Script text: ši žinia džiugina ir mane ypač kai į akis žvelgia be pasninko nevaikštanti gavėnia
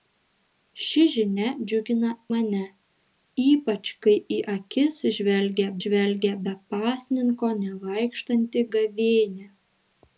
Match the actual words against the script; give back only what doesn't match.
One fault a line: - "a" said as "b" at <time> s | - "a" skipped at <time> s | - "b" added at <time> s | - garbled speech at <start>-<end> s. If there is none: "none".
- "ir" skipped at 2.1 s
- "žvelgia" added at 5.8 s